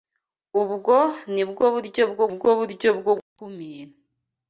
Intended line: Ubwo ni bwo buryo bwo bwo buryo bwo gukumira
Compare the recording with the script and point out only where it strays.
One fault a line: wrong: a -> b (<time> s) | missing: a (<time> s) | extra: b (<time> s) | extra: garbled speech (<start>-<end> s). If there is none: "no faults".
no faults